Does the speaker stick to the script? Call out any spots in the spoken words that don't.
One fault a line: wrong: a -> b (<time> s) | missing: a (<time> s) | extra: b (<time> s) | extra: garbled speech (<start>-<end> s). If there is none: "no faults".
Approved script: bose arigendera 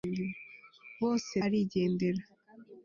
no faults